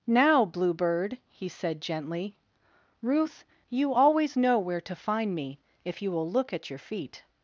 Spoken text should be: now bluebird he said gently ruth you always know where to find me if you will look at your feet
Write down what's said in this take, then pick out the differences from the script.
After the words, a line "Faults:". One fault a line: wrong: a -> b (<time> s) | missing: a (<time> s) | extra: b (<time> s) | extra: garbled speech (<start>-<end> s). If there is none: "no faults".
now bluebird he said gently ruth you always know where to find me if you will look at your feet
Faults:
no faults